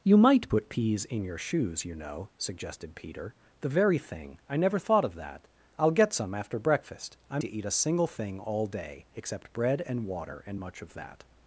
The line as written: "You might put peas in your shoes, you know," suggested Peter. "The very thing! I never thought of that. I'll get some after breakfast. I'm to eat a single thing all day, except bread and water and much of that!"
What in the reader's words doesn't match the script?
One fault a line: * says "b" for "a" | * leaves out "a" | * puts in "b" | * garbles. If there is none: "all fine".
all fine